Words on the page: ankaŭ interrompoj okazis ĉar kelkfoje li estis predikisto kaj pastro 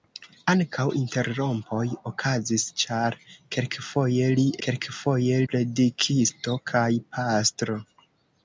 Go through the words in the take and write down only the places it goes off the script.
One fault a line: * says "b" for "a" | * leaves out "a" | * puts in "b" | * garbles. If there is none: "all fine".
* says "kelkfoje" for "estis"